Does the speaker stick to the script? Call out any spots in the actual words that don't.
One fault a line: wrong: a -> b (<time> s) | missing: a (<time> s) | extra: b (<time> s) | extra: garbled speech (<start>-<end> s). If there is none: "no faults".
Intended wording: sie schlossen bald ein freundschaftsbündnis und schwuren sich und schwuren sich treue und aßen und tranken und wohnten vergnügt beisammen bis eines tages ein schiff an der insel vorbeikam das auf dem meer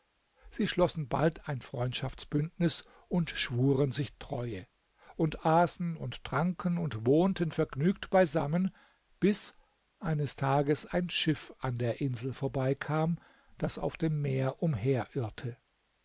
missing: und schwuren sich (4.2 s)